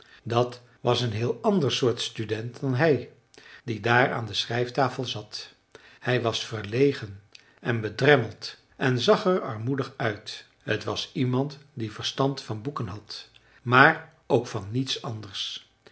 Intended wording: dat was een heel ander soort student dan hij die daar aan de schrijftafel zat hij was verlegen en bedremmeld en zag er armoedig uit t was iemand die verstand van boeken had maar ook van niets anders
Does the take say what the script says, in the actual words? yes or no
yes